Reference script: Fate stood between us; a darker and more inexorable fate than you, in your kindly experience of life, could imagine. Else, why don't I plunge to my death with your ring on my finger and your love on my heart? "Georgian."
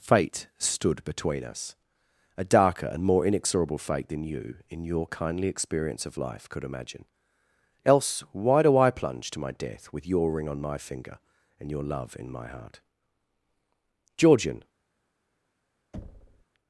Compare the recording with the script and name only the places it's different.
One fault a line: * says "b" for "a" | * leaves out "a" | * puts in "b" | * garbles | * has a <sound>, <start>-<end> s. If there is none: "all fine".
* says "do" for "don't"
* says "in" for "on"
* has a thud, 15.9-16.5 s